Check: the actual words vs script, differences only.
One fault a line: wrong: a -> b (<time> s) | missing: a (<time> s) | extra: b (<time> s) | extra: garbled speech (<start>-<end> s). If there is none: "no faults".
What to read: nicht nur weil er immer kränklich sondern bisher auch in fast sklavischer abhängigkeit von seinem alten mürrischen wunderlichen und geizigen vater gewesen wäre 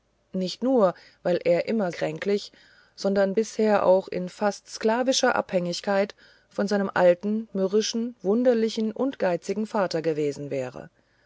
no faults